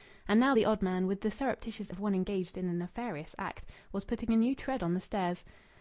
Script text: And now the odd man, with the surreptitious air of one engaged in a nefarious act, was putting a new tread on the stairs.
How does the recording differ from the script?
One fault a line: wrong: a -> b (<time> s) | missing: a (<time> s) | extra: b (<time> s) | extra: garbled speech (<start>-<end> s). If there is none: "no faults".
missing: air (1.9 s)